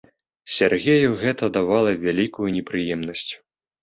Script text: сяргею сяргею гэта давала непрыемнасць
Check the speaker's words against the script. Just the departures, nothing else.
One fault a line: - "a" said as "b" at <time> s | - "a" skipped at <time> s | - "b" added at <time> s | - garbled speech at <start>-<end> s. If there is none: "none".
- "сяргею" skipped at 1.1 s
- "вялікую" added at 2.0 s